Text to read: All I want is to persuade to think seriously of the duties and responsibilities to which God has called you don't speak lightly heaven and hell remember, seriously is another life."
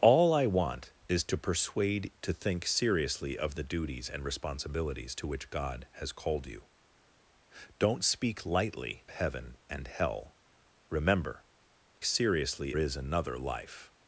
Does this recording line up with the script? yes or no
yes